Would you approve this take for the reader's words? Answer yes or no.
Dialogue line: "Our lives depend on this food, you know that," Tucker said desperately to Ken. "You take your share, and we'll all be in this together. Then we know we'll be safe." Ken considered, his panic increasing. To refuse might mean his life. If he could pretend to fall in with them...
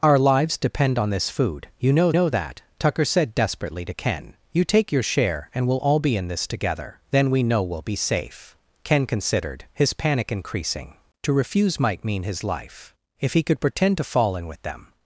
no